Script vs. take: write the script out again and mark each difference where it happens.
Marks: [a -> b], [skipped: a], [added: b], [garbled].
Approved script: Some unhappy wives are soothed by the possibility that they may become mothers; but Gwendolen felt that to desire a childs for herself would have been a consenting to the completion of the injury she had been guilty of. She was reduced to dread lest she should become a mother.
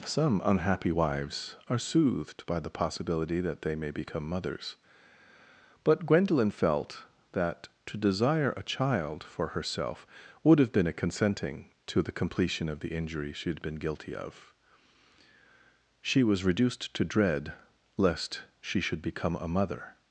Some unhappy wives are soothed by the possibility that they may become mothers; but Gwendolen felt that to desire a [childs -> child] for herself would have been a consenting to the completion of the injury she had been guilty of. She was reduced to dread lest she should become a mother.